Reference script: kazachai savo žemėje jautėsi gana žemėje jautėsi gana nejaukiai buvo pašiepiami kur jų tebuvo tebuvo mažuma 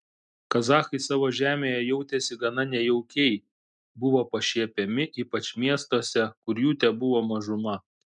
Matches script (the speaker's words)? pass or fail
fail